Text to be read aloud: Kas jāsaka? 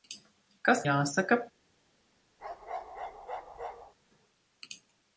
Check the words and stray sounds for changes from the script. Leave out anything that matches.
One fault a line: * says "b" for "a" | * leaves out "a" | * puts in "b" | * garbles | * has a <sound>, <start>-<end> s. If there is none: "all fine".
* has a bark, 2.4-3.9 s